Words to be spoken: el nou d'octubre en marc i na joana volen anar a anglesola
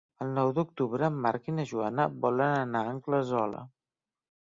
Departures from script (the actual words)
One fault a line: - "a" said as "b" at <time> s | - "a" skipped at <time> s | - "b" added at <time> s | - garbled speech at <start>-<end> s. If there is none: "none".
none